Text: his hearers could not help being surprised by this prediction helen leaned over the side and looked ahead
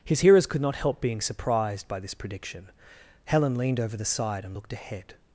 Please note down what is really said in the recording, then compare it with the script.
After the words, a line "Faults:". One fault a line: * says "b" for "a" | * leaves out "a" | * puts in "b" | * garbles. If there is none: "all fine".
his hearers could not help being surprised by this prediction helen leaned over the side and looked ahead
Faults:
all fine